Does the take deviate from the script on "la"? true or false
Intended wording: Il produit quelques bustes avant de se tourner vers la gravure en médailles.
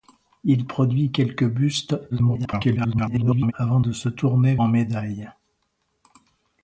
true